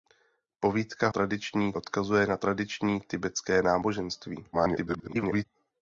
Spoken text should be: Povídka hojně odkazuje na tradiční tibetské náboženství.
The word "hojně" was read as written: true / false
false